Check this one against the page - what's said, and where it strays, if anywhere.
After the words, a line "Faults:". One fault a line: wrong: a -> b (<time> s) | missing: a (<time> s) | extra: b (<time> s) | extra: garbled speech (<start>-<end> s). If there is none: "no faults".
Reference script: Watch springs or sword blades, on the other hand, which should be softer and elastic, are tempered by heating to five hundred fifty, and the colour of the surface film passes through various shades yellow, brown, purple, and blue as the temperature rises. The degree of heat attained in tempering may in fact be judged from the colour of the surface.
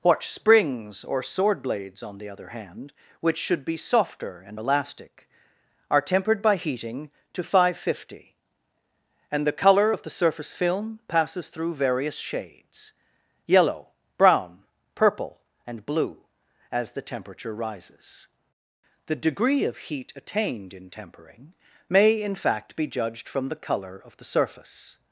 Watch springs or sword blades, on the other hand, which should be softer and elastic, are tempered by heating to five hundred fifty, and the colour of the surface film passes through various shades yellow, brown, purple, and blue as the temperature rises. The degree of heat attained in tempering may in fact be judged from the colour of the surface.
Faults:
no faults